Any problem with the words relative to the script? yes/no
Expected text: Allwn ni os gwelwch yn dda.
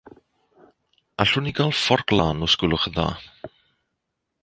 yes